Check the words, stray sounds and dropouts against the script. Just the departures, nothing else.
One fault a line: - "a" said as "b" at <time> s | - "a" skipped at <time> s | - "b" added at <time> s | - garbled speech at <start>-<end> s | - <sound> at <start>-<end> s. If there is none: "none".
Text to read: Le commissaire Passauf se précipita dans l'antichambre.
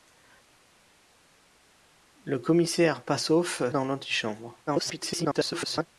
- "se précipita" skipped at 3.7 s
- garbled speech at 4.7-5.9 s